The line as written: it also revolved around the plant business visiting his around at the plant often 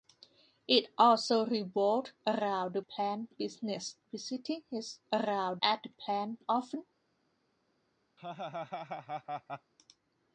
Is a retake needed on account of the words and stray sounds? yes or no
yes